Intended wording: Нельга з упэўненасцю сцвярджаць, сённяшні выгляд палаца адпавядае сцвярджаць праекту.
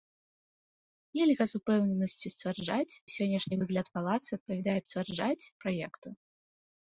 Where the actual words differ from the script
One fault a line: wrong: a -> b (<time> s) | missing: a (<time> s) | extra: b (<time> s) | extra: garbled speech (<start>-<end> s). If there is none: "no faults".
no faults